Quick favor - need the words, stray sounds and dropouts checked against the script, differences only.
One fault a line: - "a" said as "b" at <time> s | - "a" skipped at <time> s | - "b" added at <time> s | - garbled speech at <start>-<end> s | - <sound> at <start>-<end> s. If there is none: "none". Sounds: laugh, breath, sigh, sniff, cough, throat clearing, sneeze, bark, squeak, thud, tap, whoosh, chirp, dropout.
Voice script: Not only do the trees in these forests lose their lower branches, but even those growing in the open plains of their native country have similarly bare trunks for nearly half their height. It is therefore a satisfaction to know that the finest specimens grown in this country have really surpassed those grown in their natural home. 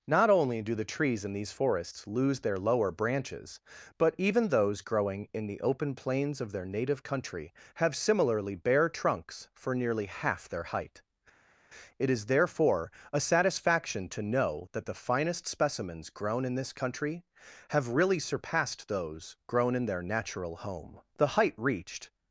- "The height reached" added at 21.1 s